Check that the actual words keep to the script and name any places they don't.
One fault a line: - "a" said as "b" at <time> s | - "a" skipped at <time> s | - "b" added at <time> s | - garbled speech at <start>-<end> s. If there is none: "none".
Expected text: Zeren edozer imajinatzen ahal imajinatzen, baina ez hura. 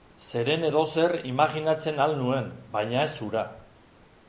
- "imajinatzen" said as "nuen" at 2.3 s